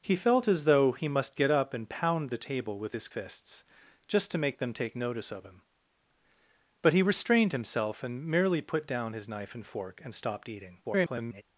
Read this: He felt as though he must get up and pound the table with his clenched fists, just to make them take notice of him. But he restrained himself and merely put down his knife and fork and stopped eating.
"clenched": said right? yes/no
no